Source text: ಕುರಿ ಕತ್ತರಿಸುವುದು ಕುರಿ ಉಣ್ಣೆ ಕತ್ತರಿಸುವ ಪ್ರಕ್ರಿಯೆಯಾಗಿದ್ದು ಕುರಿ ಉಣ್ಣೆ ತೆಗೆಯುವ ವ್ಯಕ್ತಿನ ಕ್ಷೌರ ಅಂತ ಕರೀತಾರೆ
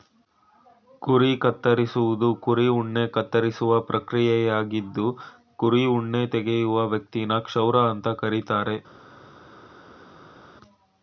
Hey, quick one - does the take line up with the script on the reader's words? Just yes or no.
yes